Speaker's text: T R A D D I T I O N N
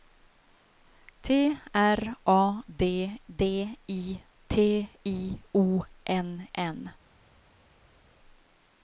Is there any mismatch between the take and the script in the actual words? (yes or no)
no